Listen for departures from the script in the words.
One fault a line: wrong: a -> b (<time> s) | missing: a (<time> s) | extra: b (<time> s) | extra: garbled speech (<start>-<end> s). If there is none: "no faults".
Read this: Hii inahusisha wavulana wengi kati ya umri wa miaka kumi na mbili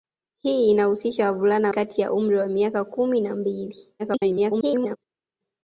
missing: wengi (1.7 s)
extra: garbled speech (4.0-5.0 s)